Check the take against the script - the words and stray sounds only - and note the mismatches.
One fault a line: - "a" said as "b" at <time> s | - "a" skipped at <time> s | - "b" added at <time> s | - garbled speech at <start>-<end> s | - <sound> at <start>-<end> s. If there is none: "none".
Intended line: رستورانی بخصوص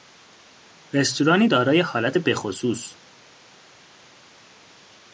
- "دارای حالت" added at 1.5 s